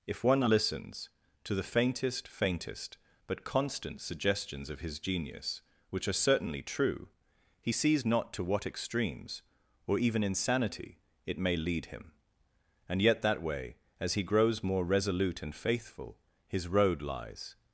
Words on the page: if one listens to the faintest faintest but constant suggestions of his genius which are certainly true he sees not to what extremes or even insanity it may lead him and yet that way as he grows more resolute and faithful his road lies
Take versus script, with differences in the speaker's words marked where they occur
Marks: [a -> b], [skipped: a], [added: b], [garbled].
if one listens to the faintest faintest but constant suggestions of his genius which are certainly true he sees not to what extremes or even insanity it may lead him and yet that way as he grows more resolute and faithful his road lies